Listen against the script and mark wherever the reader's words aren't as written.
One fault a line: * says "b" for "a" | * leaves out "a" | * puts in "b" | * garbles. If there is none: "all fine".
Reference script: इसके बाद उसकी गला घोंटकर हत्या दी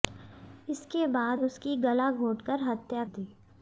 all fine